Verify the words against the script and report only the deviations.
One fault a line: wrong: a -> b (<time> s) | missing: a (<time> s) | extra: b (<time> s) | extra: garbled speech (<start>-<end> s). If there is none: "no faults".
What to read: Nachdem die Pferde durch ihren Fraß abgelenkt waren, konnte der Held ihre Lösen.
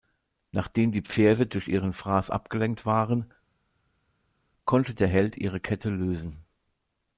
extra: Kette (5.6 s)